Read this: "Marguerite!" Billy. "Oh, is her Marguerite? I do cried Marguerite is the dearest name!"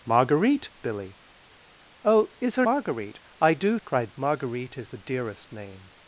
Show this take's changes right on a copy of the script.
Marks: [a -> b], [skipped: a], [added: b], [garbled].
"Marguerite!" Billy. "Oh, is her Marguerite? I do cried Marguerite is the dearest name!"